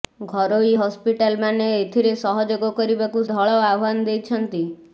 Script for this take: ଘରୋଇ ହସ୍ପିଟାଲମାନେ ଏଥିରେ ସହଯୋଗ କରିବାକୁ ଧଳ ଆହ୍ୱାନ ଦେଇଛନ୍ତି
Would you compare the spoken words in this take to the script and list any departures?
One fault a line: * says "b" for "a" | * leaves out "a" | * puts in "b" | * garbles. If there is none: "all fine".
all fine